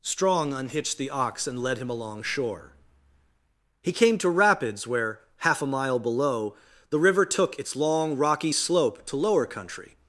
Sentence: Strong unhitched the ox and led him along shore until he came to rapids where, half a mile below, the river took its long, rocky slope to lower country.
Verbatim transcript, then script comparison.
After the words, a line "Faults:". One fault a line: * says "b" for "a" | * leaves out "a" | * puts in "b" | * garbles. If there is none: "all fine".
Strong unhitched the ox and led him along shore he came to rapids where, half a mile below, the river took its long, rocky slope to lower country.
Faults:
* leaves out "until"